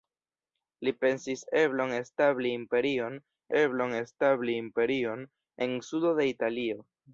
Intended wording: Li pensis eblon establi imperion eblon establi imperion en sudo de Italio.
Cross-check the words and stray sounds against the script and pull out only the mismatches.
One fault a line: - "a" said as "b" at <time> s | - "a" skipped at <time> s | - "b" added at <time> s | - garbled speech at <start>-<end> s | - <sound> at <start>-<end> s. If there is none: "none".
none